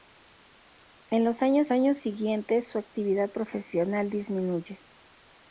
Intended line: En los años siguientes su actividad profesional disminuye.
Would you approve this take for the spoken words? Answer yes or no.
no